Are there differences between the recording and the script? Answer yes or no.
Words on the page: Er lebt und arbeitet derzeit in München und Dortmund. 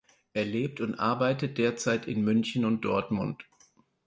no